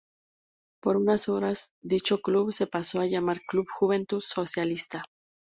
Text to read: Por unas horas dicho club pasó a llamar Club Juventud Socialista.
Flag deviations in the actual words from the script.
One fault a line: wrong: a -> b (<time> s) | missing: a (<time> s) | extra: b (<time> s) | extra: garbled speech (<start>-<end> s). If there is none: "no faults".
extra: se (2.5 s)